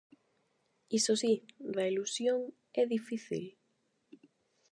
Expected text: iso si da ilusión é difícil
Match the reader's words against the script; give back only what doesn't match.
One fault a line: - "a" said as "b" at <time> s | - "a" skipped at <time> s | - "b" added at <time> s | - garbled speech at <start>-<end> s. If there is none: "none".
none